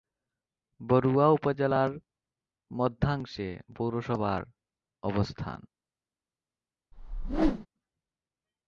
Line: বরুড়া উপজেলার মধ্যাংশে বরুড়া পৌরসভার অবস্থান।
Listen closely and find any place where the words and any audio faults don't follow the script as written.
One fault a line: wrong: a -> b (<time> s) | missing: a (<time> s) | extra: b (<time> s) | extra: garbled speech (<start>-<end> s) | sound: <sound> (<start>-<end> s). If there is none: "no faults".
missing: বরুড়া (3.5 s)
sound: whoosh (6.9-7.7 s)